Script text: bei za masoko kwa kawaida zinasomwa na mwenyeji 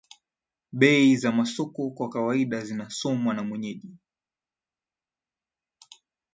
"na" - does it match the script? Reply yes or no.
yes